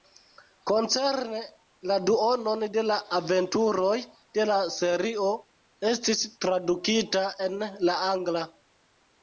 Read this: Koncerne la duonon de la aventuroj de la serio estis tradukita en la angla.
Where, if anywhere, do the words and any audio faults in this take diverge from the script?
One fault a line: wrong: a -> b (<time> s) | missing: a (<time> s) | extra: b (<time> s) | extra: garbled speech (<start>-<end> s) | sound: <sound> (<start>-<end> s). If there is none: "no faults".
no faults